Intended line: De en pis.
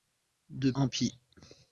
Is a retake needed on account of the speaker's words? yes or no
no